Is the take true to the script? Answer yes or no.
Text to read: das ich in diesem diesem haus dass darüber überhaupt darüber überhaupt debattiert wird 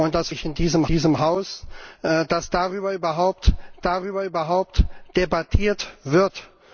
yes